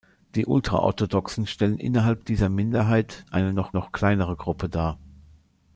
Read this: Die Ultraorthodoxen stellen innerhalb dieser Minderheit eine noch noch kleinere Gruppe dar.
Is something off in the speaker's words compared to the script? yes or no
no